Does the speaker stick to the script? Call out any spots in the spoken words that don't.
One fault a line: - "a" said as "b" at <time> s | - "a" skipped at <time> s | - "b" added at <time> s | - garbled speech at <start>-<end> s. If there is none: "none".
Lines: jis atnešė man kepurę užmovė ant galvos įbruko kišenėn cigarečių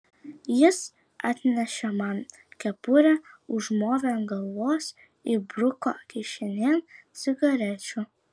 none